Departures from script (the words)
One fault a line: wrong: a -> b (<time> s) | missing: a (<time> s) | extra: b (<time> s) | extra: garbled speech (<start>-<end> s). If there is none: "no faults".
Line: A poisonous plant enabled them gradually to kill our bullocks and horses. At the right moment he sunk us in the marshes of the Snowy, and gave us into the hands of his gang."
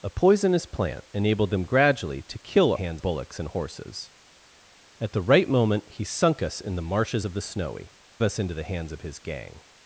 wrong: our -> hands (2.7 s)
missing: and gave (7.9 s)